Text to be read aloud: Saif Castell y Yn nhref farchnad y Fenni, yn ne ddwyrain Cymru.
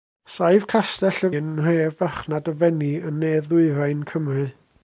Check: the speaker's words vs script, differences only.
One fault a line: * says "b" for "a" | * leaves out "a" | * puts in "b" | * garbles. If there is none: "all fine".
all fine